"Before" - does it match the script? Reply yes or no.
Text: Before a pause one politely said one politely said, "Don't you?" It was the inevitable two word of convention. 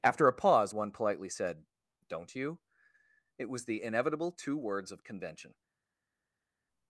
no